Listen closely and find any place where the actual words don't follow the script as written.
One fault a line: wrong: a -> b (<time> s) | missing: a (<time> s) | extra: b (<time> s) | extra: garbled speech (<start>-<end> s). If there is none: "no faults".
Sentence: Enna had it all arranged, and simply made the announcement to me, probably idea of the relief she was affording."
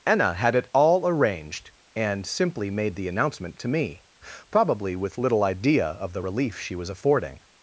extra: with little (5.0 s)